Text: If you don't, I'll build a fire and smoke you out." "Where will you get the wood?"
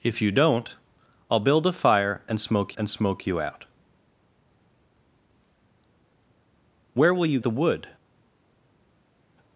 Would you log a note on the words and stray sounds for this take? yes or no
yes